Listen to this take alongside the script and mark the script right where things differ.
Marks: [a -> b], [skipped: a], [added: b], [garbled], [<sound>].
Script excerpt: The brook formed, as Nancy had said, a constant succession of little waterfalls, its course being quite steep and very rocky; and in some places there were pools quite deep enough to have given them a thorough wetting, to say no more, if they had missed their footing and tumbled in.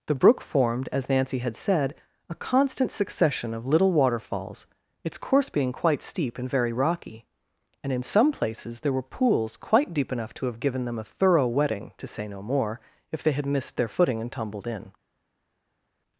The brook formed, as Nancy had said, a constant succession of little waterfalls, its course being quite steep and very rocky; and in some places there were pools quite deep enough to have given them a thorough wetting, to say no more, if they had missed their footing and tumbled in.